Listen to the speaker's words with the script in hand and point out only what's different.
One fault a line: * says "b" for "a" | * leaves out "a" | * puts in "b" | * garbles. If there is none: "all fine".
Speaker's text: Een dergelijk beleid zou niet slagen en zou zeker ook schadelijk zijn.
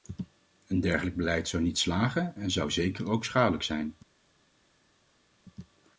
all fine